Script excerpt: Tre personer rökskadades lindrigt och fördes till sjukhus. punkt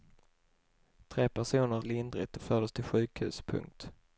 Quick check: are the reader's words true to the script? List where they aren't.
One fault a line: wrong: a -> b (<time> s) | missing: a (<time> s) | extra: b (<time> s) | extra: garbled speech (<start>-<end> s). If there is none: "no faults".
missing: rökskadades (1.8 s)